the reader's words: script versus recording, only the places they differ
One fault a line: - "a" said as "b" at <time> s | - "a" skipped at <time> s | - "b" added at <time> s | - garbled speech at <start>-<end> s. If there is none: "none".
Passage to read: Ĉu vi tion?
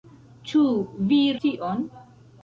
none